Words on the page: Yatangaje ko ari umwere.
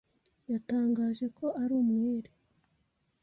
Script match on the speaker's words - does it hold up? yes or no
yes